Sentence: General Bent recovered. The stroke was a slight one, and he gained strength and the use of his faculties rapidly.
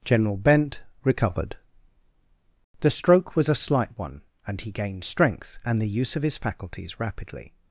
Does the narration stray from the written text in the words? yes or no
no